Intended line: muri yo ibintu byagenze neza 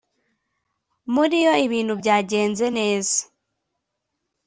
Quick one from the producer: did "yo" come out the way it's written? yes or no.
yes